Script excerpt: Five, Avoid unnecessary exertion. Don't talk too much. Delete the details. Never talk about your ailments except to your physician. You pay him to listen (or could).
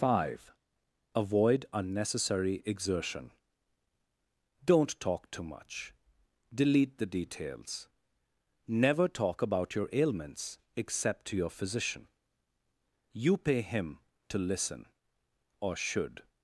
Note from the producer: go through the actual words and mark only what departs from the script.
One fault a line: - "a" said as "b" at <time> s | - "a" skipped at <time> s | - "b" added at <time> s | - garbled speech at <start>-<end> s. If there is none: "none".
- "could" said as "should" at 15.8 s